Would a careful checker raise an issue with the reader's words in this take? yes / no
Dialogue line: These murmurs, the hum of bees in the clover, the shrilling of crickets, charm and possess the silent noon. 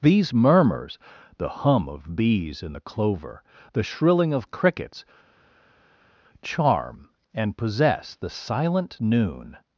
no